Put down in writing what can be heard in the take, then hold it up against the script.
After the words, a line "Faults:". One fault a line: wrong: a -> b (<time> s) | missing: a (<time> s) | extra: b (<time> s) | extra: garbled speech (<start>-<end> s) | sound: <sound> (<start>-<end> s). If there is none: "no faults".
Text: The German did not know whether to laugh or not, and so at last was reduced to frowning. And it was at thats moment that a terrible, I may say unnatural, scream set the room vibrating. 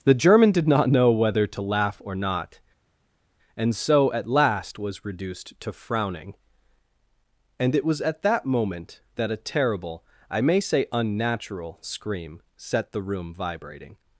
The German did not know whether to laugh or not, and so at last was reduced to frowning. And it was at that moment that a terrible, I may say unnatural, scream set the room vibrating.
Faults:
wrong: thats -> that (8.2 s)